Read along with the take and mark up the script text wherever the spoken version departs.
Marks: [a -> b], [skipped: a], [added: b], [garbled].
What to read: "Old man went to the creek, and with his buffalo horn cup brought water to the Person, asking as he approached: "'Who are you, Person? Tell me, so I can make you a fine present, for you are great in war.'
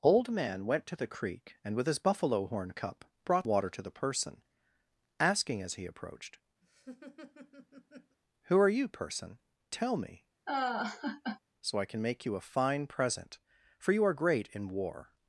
"Old man went to the creek, and with his buffalo horn cup brought water to the Person, asking as he approached: "'Who are you, Person? Tell me, so I can make you a fine present, for you are great in war.'